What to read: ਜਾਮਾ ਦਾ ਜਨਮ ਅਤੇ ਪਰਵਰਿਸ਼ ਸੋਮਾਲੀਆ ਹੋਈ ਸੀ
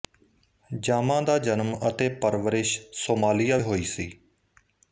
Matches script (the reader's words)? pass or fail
pass